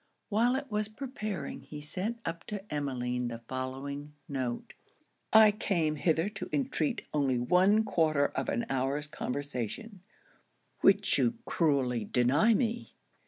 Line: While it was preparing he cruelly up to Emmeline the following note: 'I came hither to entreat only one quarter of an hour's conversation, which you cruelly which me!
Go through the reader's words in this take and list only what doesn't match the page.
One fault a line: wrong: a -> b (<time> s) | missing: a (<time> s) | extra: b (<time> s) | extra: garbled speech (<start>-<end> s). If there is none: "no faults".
wrong: cruelly -> sent (1.8 s)
wrong: which -> deny (12.0 s)